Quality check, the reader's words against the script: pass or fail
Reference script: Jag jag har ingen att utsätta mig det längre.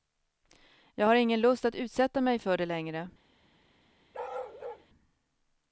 fail